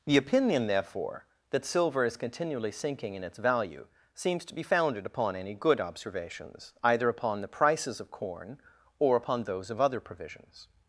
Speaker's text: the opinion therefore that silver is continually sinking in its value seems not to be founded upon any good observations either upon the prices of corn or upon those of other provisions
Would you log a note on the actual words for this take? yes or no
yes